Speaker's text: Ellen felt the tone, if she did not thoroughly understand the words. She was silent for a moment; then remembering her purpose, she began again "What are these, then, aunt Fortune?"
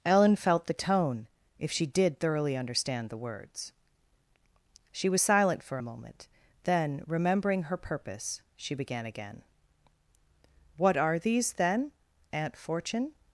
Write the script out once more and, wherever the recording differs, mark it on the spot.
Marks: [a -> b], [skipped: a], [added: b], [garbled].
Ellen felt the tone, if she did [skipped: not] thoroughly understand the words. She was silent for a moment; then remembering her purpose, she began again "What are these, then, aunt Fortune?"